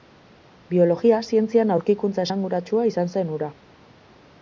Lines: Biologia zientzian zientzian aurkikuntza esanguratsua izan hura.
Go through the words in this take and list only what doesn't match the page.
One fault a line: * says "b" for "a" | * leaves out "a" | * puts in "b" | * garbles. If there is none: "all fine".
* leaves out "zientzian"
* puts in "zen"